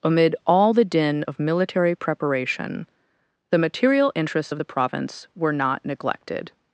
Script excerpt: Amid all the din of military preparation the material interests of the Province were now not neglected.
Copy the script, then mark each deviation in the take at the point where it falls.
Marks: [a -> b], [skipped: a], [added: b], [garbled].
Amid all the din of military preparation the material interests of the Province were [skipped: now] not neglected.